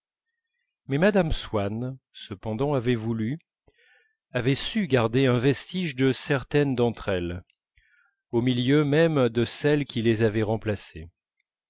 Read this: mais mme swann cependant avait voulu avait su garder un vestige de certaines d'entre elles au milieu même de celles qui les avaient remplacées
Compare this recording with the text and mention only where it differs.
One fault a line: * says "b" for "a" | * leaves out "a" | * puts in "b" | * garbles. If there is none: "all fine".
all fine